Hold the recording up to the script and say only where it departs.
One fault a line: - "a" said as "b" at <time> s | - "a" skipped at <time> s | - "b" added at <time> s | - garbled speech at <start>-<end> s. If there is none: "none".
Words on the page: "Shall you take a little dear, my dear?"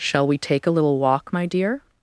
- "you" said as "we" at 0.2 s
- "dear" said as "walk" at 1.0 s